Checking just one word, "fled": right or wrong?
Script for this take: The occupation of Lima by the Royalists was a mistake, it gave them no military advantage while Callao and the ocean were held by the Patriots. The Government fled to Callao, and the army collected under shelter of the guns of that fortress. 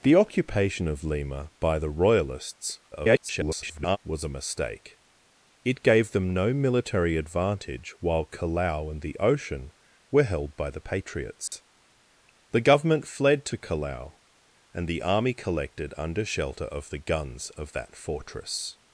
right